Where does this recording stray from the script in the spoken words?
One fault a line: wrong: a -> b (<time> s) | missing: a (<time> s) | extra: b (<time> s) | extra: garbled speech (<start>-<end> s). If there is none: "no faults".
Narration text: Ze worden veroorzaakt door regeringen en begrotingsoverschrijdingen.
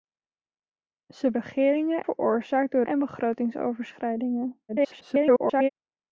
wrong: worden -> regeringen (1.3 s)
missing: regeringen (2.8 s)
extra: garbled speech (4.7-5.7 s)